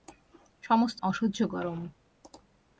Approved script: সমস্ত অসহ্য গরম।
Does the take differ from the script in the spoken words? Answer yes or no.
no